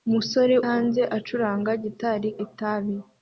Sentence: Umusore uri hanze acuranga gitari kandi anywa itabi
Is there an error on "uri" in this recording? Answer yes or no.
yes